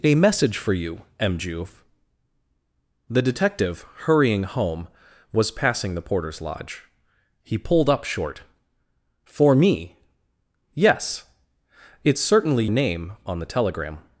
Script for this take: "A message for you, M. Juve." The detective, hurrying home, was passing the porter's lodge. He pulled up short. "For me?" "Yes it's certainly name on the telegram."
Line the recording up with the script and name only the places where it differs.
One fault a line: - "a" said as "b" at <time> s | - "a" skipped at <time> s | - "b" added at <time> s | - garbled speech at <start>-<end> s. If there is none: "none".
none